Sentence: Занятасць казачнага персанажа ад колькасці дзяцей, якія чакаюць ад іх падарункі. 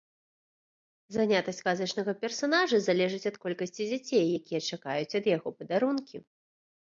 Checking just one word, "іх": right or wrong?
wrong